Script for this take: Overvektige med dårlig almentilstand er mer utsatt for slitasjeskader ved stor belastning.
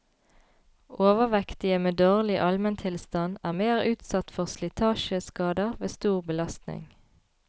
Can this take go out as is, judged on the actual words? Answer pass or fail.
pass